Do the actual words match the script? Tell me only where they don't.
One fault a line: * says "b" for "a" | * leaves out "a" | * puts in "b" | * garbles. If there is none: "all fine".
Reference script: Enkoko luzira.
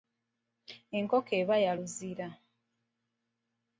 * puts in "eba ya"